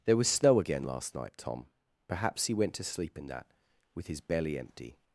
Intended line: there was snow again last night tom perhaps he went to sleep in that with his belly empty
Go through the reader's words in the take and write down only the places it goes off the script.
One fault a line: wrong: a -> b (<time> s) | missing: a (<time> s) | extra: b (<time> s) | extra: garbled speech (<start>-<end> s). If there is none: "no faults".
no faults